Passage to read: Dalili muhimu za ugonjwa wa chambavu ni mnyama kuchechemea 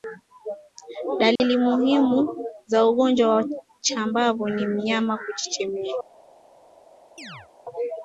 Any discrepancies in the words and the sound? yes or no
yes